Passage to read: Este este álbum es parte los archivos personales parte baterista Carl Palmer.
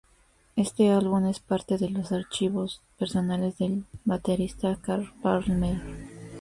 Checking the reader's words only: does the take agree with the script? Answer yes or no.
no